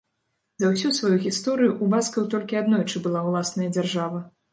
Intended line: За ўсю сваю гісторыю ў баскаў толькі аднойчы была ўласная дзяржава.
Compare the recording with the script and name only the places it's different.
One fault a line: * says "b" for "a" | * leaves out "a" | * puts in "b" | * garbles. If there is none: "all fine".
all fine